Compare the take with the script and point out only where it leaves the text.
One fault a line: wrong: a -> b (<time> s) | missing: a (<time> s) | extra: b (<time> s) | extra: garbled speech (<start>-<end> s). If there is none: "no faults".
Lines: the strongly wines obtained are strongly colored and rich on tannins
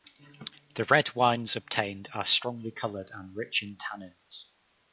wrong: strongly -> red (0.8 s)
wrong: on -> in (3.6 s)